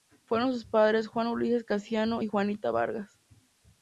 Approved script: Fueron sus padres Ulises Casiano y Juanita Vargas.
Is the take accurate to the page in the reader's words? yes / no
no